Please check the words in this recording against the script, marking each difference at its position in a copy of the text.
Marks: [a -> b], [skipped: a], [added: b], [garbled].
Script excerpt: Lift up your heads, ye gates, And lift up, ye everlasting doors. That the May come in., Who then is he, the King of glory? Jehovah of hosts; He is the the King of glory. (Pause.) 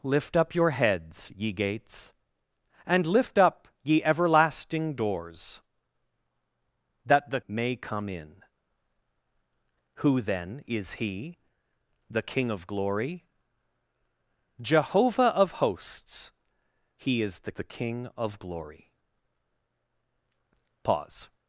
Lift up your heads, ye gates, And lift up, ye everlasting doors. That the May come in., Who then is he, the King of glory? Jehovah of hosts; He is the the King of glory. (Pause.)